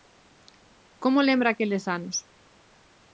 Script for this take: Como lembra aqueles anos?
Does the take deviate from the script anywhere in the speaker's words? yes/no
no